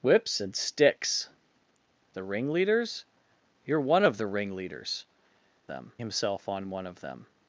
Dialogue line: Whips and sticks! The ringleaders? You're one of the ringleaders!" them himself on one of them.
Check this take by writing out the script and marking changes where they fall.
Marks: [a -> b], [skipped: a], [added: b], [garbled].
Whips and sticks! The ringleaders? You're one of the ringleaders!" them himself on one of them.